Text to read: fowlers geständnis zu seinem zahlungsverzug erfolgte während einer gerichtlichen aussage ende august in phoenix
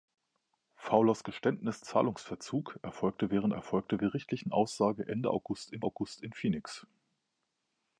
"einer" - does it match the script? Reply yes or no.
no